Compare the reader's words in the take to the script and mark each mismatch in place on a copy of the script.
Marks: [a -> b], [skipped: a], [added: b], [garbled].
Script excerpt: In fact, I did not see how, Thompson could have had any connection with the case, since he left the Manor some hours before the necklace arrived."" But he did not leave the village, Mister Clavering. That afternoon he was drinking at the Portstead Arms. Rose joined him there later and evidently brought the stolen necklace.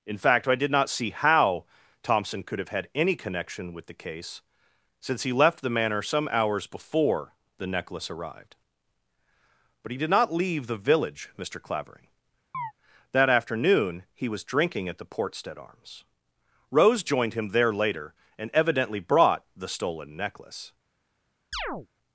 In fact, I did not see how, Thompson could have had any connection with the case, since he left the Manor some hours before the necklace arrived."" But he did not leave the village, Mister Clavering. That afternoon he was drinking at the Portstead Arms. Rose joined him there later and evidently brought the stolen necklace.